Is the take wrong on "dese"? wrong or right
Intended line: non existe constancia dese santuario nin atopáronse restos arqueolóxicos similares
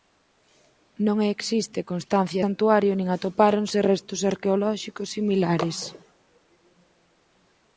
wrong